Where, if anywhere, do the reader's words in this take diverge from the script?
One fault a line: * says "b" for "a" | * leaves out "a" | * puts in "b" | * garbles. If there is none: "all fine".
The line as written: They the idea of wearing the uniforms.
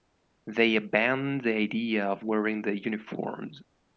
* puts in "abandoned"